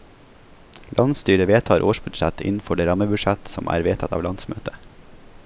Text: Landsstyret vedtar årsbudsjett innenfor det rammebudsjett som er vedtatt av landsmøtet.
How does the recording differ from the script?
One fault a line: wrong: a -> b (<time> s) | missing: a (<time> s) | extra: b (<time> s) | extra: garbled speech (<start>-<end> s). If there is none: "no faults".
no faults